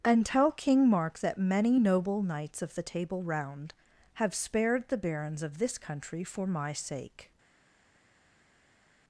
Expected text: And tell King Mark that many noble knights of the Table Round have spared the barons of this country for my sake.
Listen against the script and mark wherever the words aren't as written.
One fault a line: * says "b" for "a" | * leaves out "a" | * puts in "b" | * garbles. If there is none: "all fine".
all fine